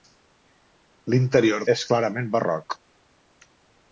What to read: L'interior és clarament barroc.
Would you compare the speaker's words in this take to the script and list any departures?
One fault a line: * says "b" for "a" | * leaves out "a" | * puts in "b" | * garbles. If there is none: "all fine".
all fine